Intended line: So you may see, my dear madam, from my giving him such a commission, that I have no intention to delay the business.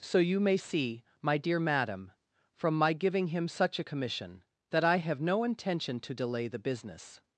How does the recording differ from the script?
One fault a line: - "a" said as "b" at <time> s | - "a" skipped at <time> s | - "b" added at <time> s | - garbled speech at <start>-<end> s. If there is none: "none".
none